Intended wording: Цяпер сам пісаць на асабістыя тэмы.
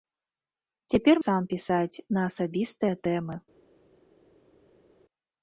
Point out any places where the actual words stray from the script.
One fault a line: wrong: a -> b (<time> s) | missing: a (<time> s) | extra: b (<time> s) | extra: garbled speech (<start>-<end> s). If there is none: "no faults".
no faults